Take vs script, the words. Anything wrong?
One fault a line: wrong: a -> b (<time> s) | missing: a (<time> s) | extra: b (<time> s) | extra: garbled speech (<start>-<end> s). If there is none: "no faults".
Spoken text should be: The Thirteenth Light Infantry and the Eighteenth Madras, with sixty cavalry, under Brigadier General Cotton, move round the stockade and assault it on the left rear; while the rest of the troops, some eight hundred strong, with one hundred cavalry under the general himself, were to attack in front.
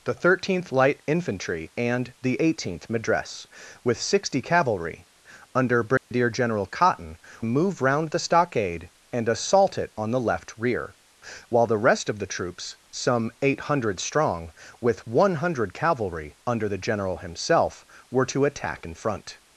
no faults